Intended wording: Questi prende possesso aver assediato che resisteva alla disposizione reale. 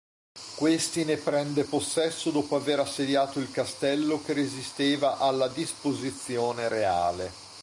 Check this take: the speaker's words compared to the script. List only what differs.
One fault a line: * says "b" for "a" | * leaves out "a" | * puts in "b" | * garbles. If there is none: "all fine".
* puts in "ne"
* puts in "dopo"
* puts in "il Castello"